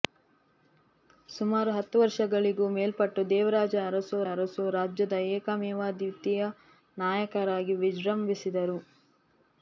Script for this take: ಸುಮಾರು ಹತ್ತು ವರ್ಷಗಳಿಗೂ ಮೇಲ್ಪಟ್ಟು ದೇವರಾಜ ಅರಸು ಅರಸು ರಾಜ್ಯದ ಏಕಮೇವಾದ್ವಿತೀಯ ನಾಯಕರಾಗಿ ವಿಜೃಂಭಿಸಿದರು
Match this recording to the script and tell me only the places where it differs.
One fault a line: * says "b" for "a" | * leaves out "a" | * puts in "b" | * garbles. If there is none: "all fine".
all fine